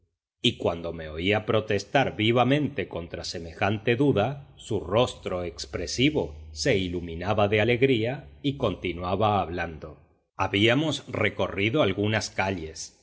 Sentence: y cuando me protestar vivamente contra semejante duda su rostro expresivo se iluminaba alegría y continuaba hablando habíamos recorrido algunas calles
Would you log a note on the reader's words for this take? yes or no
yes